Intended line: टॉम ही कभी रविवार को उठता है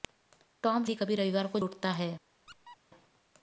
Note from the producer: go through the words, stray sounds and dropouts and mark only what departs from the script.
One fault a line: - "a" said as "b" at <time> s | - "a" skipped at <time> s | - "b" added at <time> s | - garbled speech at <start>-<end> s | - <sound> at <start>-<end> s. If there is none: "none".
- squeak at 2.5-2.8 s